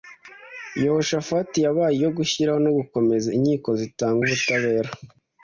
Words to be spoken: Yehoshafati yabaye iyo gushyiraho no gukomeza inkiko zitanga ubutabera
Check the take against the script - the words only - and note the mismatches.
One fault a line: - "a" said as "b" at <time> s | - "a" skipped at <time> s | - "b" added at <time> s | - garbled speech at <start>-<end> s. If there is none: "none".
none